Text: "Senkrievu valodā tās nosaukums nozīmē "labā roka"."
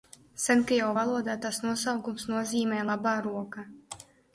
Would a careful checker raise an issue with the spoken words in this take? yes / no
no